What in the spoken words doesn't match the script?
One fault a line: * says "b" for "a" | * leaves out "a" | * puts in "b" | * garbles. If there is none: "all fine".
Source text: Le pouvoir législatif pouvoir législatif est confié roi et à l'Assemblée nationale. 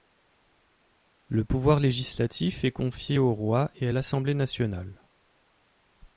* leaves out "pouvoir législatif"
* puts in "au"